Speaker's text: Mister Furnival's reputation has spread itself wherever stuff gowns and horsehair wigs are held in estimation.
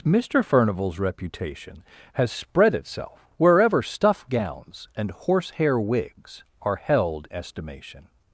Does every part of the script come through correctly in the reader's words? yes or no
no